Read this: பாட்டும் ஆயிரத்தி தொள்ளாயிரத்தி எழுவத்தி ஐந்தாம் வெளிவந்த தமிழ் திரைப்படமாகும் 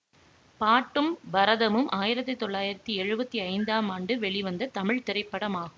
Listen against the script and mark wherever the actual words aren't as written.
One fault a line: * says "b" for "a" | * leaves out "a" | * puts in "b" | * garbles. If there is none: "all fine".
* puts in "பரதமும்"
* puts in "ஆண்டு"